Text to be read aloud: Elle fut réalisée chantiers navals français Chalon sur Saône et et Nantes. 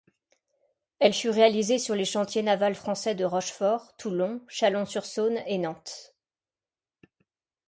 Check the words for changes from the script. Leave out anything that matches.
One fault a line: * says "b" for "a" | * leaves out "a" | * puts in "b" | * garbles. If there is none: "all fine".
* puts in "sur les"
* puts in "de Rochefort Toulon"
* leaves out "et"